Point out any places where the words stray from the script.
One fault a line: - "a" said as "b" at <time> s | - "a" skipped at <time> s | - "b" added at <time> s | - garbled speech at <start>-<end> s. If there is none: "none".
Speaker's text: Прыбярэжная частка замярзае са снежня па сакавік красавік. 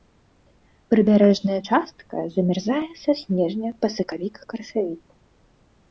none